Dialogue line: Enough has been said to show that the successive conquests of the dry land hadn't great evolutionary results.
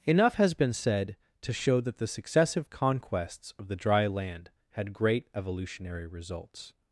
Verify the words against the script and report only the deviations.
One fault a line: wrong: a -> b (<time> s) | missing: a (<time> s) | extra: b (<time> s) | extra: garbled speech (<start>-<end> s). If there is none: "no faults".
wrong: hadn't -> had (4.7 s)